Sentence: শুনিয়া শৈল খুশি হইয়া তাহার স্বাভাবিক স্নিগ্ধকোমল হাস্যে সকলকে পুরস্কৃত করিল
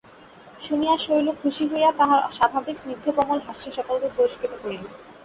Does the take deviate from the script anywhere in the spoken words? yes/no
no